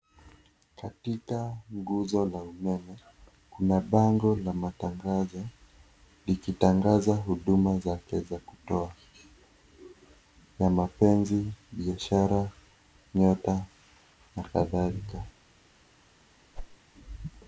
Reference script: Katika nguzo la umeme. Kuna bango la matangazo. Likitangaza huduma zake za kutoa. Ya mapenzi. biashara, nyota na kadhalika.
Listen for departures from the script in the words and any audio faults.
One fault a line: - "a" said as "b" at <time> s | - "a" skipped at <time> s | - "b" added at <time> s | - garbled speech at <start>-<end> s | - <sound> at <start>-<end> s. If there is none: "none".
- whoosh at 16.5-16.8 s